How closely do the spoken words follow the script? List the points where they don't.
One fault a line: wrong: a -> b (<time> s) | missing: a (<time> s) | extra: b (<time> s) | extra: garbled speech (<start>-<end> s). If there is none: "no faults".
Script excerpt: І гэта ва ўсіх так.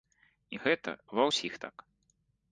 no faults